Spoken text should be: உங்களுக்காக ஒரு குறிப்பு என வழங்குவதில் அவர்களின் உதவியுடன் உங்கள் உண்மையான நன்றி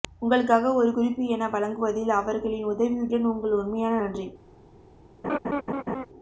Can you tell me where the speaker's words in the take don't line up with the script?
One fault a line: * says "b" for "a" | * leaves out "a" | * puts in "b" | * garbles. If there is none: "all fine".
all fine